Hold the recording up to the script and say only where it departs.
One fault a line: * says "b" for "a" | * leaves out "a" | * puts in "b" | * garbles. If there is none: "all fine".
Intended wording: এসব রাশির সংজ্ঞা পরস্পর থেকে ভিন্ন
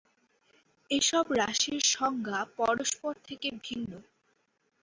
all fine